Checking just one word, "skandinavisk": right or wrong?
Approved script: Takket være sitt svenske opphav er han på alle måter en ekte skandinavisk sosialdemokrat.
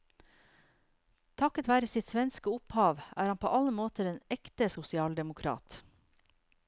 wrong